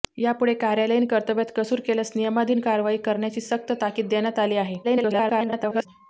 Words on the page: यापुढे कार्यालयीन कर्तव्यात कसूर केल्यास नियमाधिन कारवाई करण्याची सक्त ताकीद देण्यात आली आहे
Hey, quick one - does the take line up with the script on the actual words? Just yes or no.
no